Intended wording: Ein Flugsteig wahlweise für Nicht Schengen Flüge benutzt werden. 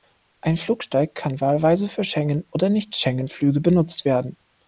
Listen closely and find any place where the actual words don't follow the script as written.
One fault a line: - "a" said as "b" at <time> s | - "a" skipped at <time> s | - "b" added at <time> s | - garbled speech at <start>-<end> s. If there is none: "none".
- "kann" added at 1.1 s
- "Schengen oder" added at 2.0 s